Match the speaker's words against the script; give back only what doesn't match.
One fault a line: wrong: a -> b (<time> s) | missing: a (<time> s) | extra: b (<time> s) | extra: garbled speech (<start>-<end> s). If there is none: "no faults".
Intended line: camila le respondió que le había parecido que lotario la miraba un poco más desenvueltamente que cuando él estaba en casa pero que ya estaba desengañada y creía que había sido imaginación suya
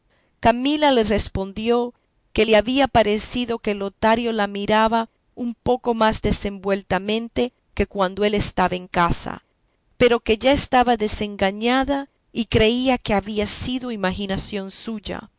no faults